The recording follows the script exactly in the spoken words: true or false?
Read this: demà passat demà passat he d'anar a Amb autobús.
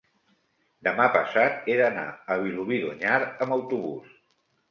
false